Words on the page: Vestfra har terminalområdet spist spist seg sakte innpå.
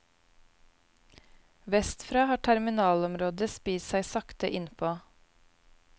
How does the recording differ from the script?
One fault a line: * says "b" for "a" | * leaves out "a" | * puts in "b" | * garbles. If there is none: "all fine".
* leaves out "spist"